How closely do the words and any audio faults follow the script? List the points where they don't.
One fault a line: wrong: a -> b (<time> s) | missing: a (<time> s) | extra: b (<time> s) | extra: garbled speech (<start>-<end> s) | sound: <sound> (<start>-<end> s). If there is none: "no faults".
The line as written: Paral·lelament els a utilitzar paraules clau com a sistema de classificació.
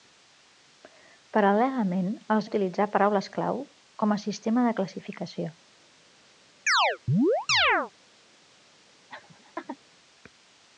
sound: chirp (6.7-7.9 s)
sound: laugh (9.1-9.8 s)